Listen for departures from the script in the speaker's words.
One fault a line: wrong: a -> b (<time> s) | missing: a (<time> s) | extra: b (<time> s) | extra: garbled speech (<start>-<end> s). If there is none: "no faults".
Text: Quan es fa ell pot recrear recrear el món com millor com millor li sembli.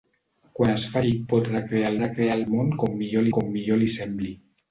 no faults